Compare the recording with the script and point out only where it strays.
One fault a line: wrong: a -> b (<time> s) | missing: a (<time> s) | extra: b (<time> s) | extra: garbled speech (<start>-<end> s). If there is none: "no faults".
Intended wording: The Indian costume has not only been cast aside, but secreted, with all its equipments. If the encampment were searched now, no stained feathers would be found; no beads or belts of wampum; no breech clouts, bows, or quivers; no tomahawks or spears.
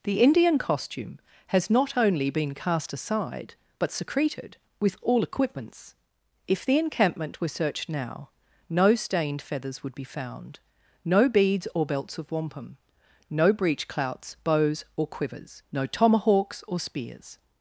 missing: its (5.2 s)